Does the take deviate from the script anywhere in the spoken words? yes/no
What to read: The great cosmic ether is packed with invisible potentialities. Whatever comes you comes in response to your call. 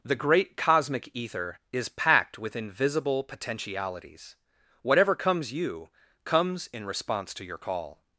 no